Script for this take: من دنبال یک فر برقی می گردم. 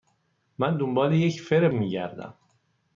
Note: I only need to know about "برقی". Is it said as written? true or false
false